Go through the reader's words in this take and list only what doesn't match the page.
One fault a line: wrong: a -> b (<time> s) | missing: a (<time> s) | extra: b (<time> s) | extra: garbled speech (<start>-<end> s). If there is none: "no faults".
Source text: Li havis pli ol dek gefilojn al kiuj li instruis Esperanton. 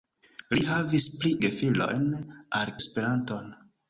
missing: ol dek (1.3 s)
missing: kiuj li instruis (2.7 s)